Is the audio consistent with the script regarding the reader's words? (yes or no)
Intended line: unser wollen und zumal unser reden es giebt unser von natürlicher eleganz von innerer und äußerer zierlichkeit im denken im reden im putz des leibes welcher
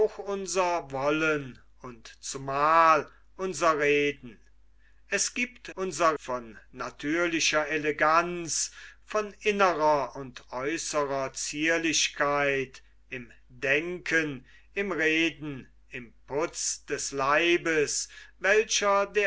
yes